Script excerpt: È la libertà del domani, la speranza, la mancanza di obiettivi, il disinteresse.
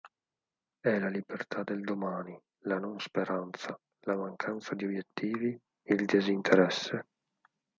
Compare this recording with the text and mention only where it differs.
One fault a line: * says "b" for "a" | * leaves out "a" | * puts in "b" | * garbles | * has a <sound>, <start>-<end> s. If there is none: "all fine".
* puts in "non"